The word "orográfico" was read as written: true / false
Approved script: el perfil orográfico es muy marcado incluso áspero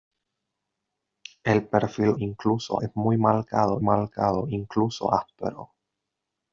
false